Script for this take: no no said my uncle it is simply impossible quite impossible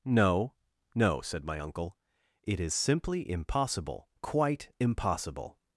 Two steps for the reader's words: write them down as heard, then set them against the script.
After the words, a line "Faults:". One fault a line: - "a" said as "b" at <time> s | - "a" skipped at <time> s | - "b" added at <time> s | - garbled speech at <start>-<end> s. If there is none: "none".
no no said my uncle it is simply impossible quite impossible
Faults:
none